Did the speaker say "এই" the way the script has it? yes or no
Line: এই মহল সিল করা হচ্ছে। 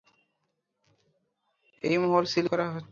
yes